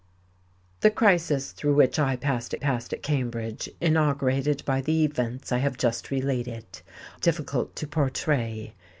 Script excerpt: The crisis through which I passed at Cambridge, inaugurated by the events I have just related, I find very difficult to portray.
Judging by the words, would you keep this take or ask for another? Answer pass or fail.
fail